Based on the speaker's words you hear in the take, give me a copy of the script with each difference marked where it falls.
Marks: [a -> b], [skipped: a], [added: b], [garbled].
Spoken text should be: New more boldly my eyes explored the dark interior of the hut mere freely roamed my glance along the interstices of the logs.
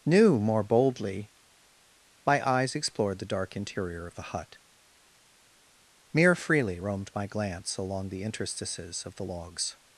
New more boldly my eyes explored the dark interior of the hut mere freely roamed my glance along the interstices of the logs.